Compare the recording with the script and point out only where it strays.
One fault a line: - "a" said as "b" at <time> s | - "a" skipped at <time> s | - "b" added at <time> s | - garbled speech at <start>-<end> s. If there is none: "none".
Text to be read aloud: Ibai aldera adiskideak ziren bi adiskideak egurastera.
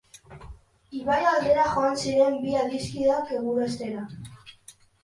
- "adiskideak" said as "joan" at 1.8 s